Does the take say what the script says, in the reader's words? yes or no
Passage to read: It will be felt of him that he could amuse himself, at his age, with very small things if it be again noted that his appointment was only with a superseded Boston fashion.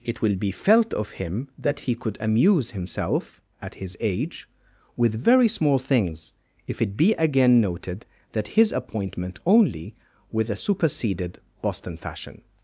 no